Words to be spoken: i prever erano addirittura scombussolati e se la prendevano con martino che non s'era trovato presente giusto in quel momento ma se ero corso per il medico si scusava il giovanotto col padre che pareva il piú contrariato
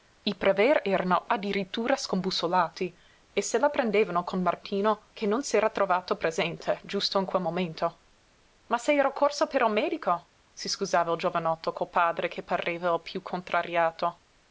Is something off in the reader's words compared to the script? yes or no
no